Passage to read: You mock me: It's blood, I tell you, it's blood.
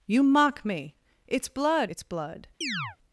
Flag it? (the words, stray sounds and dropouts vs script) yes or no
yes